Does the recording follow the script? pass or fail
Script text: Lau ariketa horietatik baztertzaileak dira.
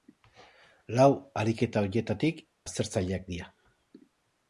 pass